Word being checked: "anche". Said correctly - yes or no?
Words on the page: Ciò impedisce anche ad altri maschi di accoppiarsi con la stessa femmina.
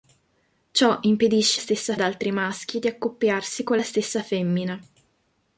no